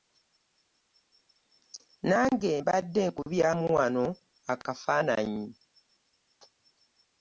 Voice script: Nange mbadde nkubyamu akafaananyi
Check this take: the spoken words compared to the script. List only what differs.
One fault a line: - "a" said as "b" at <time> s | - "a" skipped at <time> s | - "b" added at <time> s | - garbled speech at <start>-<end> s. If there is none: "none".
- "wano" added at 3.8 s